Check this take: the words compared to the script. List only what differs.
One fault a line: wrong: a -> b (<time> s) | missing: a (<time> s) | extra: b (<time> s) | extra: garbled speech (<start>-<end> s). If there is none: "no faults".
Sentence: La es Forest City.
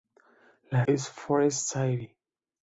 no faults